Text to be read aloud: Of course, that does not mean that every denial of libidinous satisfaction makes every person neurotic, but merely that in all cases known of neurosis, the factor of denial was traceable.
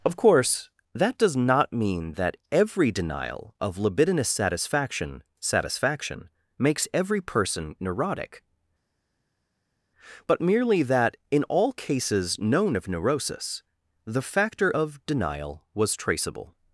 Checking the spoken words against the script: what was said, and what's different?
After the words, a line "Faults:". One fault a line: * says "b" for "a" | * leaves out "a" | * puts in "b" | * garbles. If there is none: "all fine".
Of course, that does not mean that every denial of libidinous satisfaction satisfaction makes every person neurotic, but merely that in all cases known of neurosis, the factor of denial was traceable.
Faults:
* puts in "satisfaction"